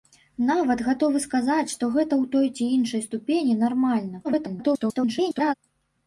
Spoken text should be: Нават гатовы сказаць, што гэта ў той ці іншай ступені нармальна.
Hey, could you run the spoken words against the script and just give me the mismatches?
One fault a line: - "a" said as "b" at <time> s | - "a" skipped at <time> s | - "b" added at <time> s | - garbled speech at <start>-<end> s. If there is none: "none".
- garbled speech at 4.2-5.5 s